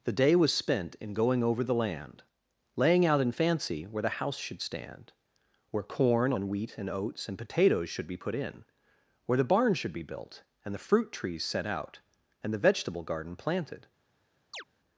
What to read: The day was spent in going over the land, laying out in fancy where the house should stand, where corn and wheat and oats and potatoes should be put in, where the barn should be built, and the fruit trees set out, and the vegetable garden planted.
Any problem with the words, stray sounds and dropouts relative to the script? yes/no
yes